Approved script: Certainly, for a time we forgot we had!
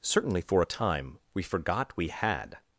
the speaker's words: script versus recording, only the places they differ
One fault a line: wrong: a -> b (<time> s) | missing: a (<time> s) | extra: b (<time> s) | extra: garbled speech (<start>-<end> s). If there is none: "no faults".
no faults